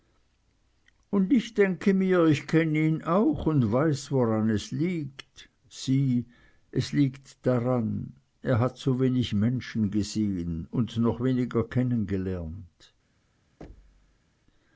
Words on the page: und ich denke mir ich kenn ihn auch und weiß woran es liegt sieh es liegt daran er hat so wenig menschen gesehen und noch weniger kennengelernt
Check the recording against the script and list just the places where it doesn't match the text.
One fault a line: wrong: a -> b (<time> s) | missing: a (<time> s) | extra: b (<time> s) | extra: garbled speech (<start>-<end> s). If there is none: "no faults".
no faults